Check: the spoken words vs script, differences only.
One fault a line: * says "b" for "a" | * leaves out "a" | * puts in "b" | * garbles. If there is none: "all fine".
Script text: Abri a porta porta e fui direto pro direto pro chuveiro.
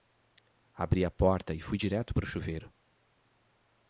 * leaves out "porta"
* leaves out "direto pro"